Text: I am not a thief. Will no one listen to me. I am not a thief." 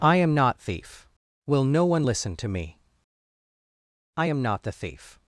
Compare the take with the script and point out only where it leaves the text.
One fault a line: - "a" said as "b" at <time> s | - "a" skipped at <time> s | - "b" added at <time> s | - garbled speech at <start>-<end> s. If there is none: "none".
- "a" skipped at 0.6 s
- "a" said as "the" at 4.6 s